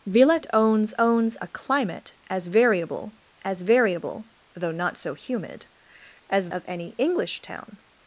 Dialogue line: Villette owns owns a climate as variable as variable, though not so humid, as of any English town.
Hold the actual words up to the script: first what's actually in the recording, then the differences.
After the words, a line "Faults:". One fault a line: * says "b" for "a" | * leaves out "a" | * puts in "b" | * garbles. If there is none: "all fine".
Villette owns owns a climate as variable as variable, though not so humid, as of any English town.
Faults:
all fine